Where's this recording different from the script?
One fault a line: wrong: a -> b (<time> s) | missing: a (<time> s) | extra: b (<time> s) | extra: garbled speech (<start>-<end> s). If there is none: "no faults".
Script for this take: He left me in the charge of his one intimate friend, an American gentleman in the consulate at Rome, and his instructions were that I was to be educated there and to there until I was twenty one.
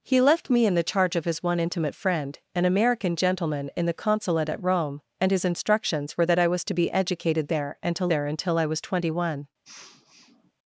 no faults